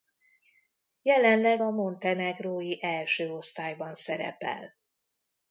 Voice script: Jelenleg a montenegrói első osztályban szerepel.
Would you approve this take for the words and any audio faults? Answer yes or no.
yes